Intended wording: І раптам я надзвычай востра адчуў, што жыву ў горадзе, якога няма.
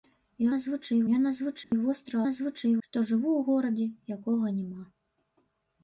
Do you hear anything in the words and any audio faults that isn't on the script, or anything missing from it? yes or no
yes